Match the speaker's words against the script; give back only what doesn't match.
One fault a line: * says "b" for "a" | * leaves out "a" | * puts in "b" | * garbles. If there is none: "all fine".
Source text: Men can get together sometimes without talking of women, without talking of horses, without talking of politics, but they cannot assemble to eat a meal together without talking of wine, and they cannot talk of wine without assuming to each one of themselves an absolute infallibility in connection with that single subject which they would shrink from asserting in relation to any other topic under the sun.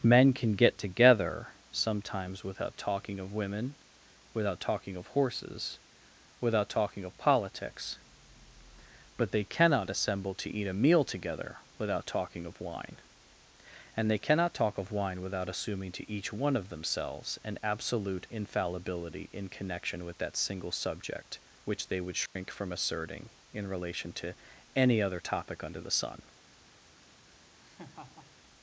all fine